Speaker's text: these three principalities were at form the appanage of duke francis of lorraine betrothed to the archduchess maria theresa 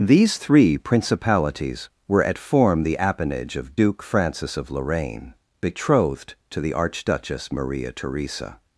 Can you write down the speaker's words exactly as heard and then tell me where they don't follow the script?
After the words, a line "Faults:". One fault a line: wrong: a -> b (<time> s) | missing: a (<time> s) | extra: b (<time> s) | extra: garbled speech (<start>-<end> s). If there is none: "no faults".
these three principalities were at form the appanage of duke francis of lorraine betrothed to the archduchess maria theresa
Faults:
no faults